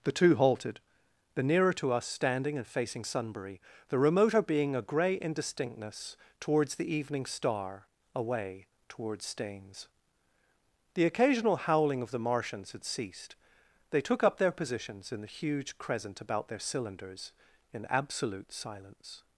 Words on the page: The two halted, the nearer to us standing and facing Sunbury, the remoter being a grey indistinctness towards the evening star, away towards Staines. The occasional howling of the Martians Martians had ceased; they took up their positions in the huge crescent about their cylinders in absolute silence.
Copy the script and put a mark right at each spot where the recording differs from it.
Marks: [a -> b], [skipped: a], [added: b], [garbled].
The two halted, the nearer to us standing and facing Sunbury, the remoter being a grey indistinctness towards the evening star, away towards Staines. The occasional howling of the Martians [skipped: Martians] had ceased; they took up their positions in the huge crescent about their cylinders in absolute silence.